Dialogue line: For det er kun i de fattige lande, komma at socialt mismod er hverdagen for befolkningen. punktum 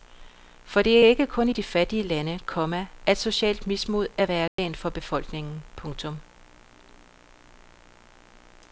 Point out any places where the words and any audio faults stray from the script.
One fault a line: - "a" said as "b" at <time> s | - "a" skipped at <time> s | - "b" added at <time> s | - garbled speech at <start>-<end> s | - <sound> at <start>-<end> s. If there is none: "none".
- "ikke" added at 1.1 s
- dropout at 4.5-4.6 s